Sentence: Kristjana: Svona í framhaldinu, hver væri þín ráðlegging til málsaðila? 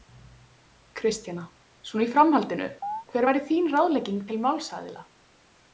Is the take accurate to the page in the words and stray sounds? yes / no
no